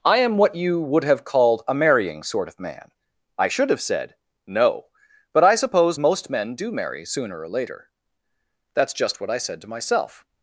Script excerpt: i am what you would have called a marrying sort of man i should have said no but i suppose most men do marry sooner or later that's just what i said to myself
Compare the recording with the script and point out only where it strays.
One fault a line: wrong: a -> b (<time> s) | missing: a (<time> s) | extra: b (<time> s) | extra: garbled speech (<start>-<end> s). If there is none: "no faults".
no faults